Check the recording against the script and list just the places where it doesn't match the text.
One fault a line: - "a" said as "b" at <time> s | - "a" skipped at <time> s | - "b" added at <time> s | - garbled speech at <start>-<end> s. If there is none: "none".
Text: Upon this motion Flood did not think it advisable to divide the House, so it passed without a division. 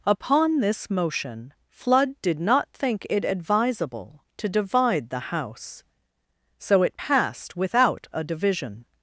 none